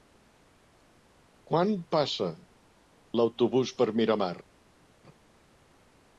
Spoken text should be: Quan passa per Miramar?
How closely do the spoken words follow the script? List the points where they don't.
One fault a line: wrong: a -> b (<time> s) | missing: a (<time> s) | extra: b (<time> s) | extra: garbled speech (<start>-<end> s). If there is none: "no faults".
extra: l'autobús (3.2 s)